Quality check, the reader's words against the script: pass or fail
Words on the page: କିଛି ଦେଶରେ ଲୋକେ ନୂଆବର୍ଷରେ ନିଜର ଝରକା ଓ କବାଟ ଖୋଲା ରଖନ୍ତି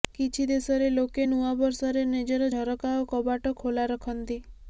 pass